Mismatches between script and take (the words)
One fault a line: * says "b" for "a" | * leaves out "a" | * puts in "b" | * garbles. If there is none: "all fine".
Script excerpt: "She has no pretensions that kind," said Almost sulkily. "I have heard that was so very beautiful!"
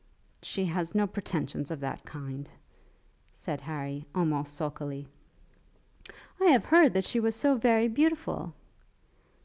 * puts in "of"
* puts in "Harry"
* puts in "she"